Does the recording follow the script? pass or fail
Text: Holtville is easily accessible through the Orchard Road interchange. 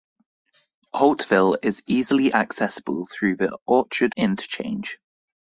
fail